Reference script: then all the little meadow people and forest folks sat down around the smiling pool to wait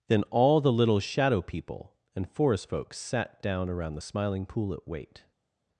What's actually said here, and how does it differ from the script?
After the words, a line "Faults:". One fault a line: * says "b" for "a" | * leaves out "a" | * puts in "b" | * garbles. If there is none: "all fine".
then all the little shadow people and forest folks sat down around the smiling pool at wait
Faults:
* says "shadow" for "meadow"
* says "at" for "to"